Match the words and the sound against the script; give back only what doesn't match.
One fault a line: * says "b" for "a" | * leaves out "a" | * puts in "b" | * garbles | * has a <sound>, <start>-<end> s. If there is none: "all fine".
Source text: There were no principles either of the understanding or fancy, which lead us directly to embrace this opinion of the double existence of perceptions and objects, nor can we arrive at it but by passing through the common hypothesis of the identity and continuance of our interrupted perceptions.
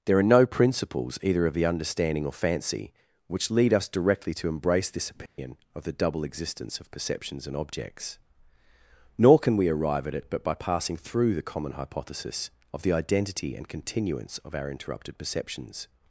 * says "are" for "were"
* has a dropout, 5.3-5.4 s